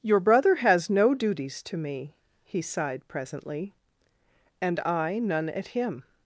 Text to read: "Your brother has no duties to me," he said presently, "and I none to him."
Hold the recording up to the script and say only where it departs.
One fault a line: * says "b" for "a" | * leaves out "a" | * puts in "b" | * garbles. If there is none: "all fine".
* says "sighed" for "said"
* says "at" for "to"